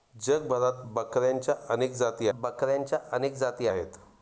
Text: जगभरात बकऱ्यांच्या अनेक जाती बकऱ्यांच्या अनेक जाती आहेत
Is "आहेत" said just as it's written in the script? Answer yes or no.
yes